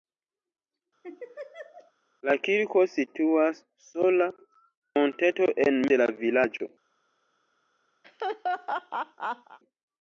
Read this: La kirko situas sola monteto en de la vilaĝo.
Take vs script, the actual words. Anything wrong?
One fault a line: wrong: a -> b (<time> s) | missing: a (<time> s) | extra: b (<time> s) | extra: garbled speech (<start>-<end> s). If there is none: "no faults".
no faults